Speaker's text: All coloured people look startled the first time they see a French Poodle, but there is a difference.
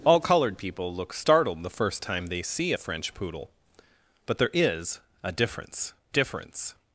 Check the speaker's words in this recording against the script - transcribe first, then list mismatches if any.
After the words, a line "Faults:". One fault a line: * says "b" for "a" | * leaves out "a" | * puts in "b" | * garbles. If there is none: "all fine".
All coloured people look startled the first time they see a French Poodle, but there is a difference difference.
Faults:
* puts in "difference"